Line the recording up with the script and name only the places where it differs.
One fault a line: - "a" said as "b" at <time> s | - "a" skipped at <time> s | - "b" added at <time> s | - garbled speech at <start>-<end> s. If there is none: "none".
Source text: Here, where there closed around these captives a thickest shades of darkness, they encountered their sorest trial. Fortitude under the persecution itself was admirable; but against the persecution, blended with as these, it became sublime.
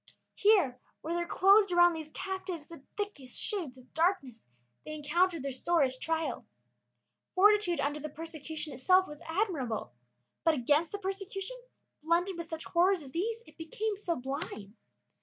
- "a" said as "the" at 2.6 s
- "such horrors" added at 12.5 s